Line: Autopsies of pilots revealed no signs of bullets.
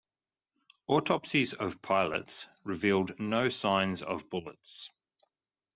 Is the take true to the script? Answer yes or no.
yes